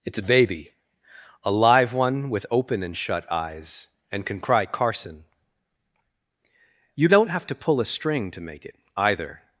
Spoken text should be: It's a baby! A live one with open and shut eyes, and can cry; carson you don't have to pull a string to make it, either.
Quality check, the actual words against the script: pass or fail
pass